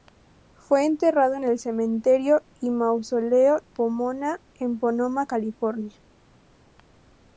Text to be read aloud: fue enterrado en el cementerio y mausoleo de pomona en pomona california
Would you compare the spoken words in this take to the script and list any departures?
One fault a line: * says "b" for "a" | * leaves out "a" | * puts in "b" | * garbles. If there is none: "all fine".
* leaves out "de"